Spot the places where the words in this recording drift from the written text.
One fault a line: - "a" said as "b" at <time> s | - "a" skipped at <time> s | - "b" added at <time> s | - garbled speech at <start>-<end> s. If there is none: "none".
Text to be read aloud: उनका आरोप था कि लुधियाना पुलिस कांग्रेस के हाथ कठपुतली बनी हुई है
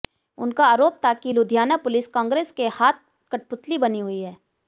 none